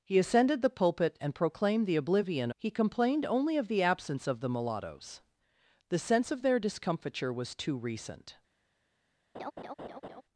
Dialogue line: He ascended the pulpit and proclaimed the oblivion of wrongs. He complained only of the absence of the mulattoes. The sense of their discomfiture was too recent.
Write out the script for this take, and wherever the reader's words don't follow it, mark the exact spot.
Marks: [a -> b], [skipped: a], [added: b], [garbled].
He ascended the pulpit and proclaimed the oblivion [skipped: of wrongs.] He complained only of the absence of the mulattoes. The sense of their discomfiture was too recent.